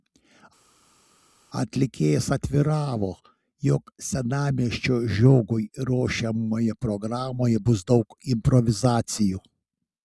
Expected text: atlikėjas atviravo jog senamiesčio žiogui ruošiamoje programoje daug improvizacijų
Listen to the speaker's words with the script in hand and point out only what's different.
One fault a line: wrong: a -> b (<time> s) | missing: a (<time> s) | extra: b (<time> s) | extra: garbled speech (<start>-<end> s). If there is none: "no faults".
extra: bus (7.7 s)